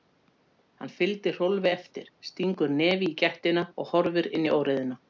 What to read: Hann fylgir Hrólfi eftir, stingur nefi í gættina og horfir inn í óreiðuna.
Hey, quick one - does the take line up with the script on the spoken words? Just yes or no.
yes